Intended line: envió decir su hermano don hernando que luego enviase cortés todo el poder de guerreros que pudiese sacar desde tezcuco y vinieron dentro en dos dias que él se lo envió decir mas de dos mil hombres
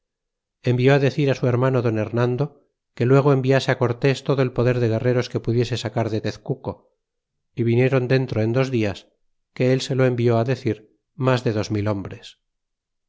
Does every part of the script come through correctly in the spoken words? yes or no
no